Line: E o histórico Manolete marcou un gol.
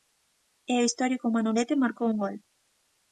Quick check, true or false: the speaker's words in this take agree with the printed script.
true